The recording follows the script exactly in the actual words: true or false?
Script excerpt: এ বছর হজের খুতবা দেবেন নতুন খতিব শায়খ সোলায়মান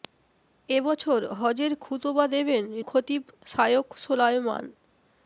false